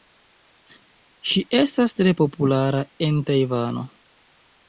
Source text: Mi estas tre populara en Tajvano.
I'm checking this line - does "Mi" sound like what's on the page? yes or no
no